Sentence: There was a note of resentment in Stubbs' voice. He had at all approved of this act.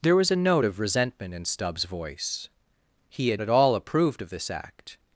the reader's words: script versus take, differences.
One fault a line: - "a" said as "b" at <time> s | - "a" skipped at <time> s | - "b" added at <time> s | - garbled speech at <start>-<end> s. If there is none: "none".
none